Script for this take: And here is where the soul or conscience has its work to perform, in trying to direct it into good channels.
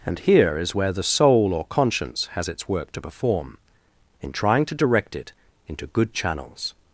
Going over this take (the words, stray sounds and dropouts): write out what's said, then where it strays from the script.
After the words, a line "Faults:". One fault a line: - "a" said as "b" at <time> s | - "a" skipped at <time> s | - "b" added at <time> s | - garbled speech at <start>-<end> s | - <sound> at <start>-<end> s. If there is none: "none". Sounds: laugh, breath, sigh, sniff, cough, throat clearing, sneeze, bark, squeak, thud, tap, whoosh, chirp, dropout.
And here is where the soul or conscience has its work to perform, in trying to direct it into good channels.
Faults:
none